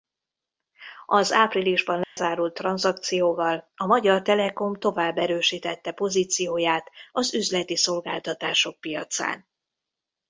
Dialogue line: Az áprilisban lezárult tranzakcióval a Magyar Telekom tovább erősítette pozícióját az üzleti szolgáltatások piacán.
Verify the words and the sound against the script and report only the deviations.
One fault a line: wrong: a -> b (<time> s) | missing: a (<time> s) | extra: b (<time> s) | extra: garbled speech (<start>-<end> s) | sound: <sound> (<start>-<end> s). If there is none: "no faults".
sound: dropout (2.0-2.2 s)